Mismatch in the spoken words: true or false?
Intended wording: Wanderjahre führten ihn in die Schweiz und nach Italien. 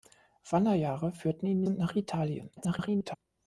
true